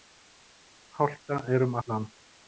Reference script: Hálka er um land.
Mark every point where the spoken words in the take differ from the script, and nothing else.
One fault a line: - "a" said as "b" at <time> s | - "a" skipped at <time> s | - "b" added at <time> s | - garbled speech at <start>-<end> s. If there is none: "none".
none